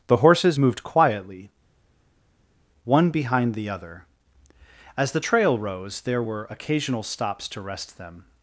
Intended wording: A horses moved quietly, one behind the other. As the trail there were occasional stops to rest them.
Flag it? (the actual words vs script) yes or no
yes